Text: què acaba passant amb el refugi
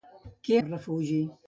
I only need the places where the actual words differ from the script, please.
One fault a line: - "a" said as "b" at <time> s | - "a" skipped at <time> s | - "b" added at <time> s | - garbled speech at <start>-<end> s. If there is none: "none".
- "acaba passant amb" skipped at 0.6 s